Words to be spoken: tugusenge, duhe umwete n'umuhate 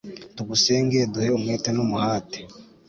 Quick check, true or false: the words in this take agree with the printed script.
true